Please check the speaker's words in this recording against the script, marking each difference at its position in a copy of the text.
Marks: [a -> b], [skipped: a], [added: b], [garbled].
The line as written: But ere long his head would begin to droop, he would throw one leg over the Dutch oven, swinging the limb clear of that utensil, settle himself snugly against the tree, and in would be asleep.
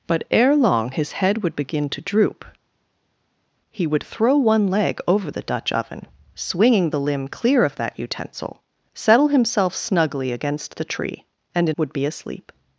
But ere long his head would begin to droop, he would throw one leg over the Dutch oven, swinging the limb clear of that utensil, settle himself snugly against the tree, and in would be asleep.